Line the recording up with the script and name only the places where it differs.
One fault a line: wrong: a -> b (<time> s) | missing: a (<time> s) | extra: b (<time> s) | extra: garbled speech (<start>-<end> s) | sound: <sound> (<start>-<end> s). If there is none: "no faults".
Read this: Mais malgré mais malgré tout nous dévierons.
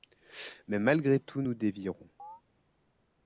missing: mais malgré (1.2 s)
sound: chirp (2.2-2.4 s)